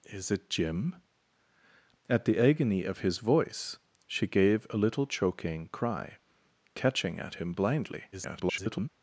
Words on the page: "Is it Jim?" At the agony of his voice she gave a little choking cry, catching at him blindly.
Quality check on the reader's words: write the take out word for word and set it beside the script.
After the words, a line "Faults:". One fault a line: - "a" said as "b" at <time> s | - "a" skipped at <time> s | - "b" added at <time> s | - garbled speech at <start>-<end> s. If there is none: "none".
"Is it Jim?" At the agony of his voice she gave a little choking cry, catching at him blindly. [garbled]
Faults:
- garbled speech at 8.1-8.9 s